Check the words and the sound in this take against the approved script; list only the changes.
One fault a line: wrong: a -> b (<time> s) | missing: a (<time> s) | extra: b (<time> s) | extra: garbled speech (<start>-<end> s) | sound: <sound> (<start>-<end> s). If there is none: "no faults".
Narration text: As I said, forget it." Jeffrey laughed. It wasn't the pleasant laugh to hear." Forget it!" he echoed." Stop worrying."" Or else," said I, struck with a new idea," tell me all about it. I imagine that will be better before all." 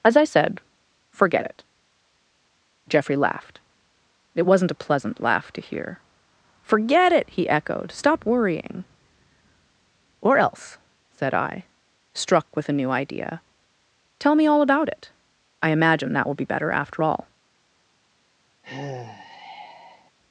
wrong: the -> a (4.7 s)
wrong: before -> after (16.7 s)
sound: sigh (18.6-20.1 s)